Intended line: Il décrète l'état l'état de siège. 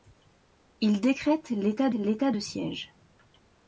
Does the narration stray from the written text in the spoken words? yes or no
no